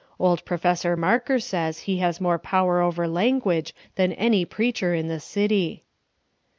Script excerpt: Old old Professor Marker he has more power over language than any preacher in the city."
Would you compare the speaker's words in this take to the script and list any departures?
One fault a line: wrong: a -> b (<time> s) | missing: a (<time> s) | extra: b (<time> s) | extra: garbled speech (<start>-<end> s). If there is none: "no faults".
missing: old (0.4 s)
extra: says (1.4 s)